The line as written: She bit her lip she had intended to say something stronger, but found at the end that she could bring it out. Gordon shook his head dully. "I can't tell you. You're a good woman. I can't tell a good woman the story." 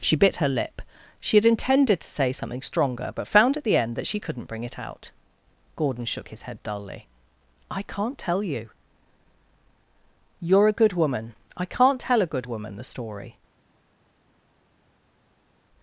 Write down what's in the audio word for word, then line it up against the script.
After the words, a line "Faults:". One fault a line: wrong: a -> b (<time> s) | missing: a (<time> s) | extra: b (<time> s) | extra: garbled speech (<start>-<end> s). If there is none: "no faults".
She bit her lip she had intended to say something stronger, but found at the end that she couldn't bring it out. Gordon shook his head dully. "I can't tell you. You're a good woman. I can't tell a good woman the story."
Faults:
wrong: could -> couldn't (4.2 s)